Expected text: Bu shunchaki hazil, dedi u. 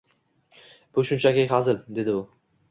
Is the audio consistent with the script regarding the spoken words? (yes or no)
yes